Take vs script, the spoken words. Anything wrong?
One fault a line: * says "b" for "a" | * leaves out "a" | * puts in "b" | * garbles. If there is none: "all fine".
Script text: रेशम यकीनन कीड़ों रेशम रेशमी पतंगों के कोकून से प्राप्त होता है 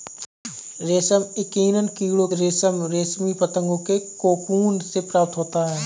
all fine